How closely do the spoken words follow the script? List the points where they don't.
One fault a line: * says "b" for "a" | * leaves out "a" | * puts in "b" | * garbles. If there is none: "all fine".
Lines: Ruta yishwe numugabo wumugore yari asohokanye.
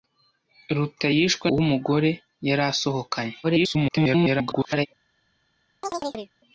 * leaves out "numugabo"
* garbles